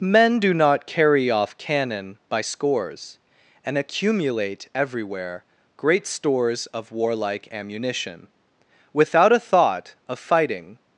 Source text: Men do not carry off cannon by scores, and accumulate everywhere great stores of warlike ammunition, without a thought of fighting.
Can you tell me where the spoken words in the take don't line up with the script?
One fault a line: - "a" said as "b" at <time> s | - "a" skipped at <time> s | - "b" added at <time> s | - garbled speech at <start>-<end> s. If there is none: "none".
none